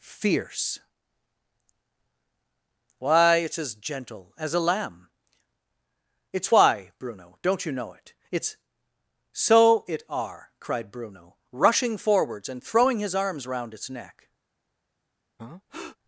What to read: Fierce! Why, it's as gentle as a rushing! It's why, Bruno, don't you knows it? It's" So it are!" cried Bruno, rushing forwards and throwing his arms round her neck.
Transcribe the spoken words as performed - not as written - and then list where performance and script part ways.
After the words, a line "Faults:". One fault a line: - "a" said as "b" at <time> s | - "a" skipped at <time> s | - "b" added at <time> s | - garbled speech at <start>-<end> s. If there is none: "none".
Fierce! Why, it's as gentle as a lamb! It's why, Bruno, don't you know it? It's" So it are!" cried Bruno, rushing forwards and throwing his arms round its neck.
Faults:
- "rushing" said as "lamb" at 4.6 s
- "knows" said as "know" at 7.7 s
- "her" said as "its" at 13.7 s